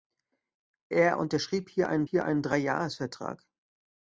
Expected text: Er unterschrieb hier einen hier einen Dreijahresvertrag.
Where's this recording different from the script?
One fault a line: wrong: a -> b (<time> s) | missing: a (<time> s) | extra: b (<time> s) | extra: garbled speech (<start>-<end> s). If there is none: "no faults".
no faults